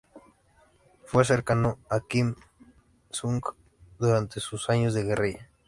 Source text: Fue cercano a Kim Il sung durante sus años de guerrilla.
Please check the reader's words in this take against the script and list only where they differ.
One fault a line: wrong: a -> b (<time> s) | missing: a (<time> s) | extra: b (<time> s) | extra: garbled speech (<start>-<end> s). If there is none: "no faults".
no faults